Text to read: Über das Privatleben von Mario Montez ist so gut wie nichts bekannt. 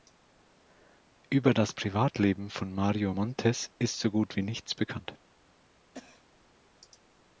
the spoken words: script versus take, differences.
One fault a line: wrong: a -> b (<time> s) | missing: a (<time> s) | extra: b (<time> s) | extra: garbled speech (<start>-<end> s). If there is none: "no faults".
no faults